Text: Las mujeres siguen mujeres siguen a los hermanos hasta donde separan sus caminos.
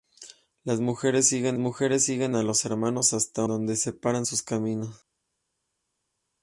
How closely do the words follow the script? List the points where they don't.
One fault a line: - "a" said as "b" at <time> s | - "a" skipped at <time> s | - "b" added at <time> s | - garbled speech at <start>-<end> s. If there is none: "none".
none